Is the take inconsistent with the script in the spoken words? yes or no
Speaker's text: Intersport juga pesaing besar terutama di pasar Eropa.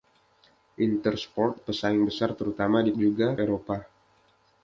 yes